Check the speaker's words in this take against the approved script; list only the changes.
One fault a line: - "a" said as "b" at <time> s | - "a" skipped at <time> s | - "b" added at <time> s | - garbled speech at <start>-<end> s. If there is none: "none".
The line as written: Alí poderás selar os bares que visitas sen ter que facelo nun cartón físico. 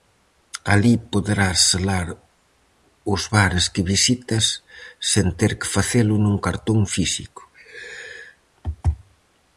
none